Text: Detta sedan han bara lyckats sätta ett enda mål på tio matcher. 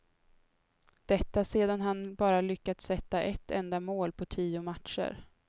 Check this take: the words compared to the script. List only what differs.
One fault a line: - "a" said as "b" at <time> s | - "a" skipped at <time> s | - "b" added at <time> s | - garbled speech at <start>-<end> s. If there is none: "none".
none